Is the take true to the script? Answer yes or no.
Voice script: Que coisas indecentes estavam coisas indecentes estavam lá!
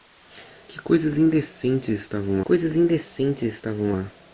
yes